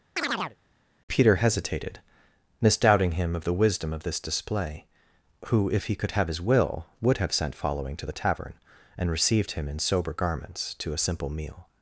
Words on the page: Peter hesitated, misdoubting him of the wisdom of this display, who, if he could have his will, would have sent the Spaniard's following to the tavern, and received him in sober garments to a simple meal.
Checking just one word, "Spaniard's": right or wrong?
wrong